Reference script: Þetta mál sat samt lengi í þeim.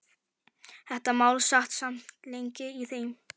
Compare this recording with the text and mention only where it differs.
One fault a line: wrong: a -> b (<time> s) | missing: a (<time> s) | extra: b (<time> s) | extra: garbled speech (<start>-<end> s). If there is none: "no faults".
no faults